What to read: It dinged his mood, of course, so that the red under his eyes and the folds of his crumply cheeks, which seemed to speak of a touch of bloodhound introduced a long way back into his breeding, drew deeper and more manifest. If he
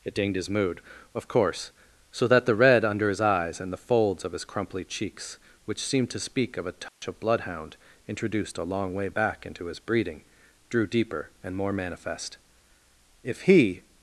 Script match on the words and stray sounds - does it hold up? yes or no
no